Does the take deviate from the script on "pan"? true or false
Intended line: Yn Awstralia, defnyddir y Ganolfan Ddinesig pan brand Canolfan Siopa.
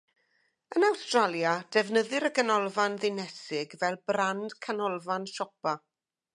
true